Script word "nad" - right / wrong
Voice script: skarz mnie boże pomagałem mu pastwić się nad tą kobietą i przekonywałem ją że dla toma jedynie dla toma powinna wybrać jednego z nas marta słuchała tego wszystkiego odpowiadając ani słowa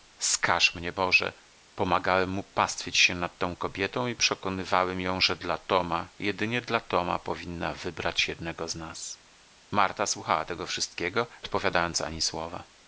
right